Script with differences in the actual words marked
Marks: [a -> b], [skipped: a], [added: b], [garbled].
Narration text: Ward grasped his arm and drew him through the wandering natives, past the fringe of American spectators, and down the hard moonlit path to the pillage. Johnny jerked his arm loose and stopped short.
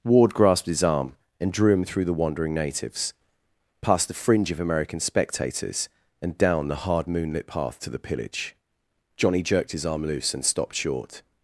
Ward grasped his arm and drew him through the wandering natives, past the fringe of American spectators, and down the hard moonlit path to the pillage. Johnny jerked his arm loose and stopped short.